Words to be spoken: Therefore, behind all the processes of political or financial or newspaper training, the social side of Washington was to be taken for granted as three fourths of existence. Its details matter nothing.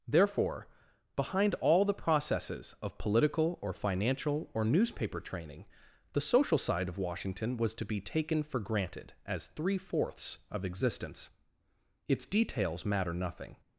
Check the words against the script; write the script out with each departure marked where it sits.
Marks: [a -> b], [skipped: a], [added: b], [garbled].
Therefore, behind all the processes of political or financial or newspaper training, the social side of Washington was to be taken for granted as three fourths of existence. Its details matter nothing.